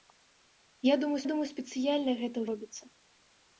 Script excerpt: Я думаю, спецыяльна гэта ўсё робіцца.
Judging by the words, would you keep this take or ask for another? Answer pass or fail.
fail